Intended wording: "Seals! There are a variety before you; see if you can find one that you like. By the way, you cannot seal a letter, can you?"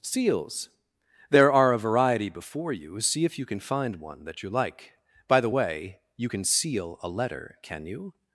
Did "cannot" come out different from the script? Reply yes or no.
yes